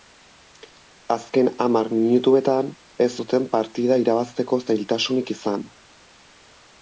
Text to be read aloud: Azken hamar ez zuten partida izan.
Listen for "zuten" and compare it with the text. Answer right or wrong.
right